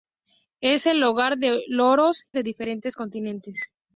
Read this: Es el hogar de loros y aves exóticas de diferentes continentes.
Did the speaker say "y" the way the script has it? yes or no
no